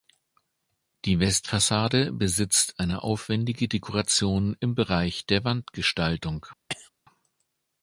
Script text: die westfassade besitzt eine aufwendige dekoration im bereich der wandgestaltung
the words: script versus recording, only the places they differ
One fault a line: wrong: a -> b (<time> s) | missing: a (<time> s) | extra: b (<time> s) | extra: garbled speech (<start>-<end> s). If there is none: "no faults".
no faults